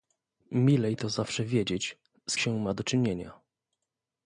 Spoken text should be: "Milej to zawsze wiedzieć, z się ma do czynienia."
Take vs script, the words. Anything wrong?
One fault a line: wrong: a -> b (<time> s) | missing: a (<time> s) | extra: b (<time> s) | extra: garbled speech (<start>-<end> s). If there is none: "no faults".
no faults